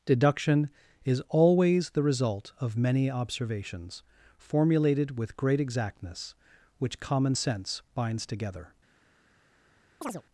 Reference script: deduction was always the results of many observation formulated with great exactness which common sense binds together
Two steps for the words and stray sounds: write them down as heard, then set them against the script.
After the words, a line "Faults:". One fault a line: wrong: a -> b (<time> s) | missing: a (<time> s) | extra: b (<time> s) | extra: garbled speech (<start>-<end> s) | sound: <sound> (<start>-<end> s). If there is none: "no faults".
deduction is always the result of many observations formulated with great exactness which common sense binds together
Faults:
wrong: was -> is (1.1 s)
wrong: results -> result (2.0 s)
wrong: observation -> observations (3.1 s)
sound: chirp (10.0-10.2 s)